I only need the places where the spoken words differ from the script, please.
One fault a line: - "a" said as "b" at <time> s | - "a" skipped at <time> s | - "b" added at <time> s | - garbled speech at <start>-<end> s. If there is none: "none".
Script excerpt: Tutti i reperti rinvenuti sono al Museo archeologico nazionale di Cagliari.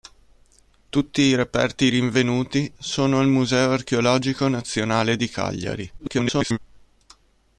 - garbled speech at 6.0-6.6 s